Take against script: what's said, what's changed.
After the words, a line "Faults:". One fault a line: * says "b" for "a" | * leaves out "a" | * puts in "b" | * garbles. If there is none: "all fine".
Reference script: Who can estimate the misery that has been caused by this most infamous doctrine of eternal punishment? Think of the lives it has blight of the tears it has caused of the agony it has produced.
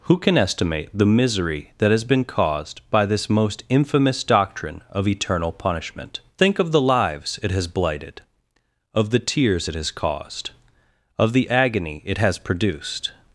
Who can estimate the misery that has been caused by this most infamous doctrine of eternal punishment? Think of the lives it has blighted of the tears it has caused of the agony it has produced.
Faults:
* says "blighted" for "blight"